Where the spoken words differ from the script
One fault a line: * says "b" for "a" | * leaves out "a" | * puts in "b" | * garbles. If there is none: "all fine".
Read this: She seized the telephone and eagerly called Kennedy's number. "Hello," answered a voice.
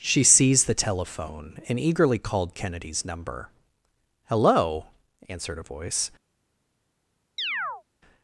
all fine